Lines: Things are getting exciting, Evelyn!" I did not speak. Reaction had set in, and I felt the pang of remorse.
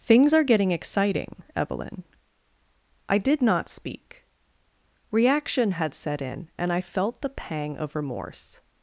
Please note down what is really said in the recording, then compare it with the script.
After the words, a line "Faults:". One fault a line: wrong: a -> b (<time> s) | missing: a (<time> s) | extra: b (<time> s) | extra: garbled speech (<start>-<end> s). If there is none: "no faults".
Things are getting exciting, Evelyn!" I did not speak. Reaction had set in, and I felt the pang of remorse.
Faults:
no faults